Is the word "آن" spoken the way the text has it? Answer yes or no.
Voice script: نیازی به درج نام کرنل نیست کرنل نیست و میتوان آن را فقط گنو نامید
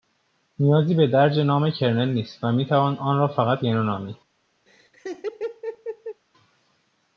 yes